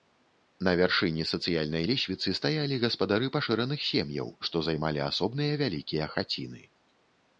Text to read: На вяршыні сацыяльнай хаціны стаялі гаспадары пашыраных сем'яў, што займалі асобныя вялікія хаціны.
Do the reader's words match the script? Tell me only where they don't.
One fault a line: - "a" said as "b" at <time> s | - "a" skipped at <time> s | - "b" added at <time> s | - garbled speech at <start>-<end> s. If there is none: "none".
- "хаціны" said as "лесвіцы" at 1.9 s